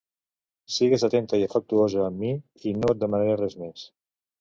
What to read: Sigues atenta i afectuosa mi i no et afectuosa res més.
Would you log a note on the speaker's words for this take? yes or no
yes